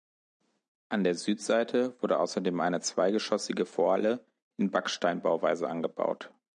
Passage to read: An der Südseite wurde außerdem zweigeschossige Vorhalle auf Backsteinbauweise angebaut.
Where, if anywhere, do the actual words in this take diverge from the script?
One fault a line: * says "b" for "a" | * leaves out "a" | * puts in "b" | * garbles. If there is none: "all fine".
* puts in "eine"
* says "in" for "auf"